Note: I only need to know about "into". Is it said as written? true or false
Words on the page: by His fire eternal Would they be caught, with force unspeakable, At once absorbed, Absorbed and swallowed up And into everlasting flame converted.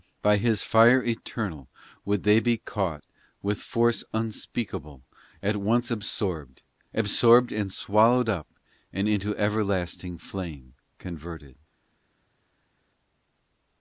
true